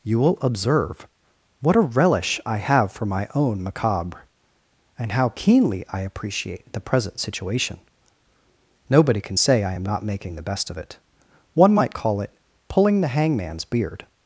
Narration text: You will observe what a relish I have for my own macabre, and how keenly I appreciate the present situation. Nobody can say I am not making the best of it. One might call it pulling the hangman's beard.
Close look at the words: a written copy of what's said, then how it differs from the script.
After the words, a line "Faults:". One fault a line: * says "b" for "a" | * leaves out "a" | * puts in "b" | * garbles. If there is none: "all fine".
You will observe what a relish I have for my own macabre, and how keenly I appreciate the present situation. Nobody can say I am not making the best of it. One might call it pulling the hangman's beard.
Faults:
all fine